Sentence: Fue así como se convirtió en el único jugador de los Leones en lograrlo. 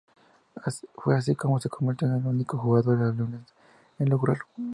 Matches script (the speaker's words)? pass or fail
pass